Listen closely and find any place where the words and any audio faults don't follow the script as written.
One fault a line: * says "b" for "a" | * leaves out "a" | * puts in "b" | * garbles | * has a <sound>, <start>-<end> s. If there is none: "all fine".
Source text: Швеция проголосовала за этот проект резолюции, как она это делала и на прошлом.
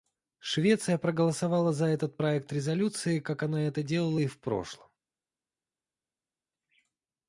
* says "в" for "на"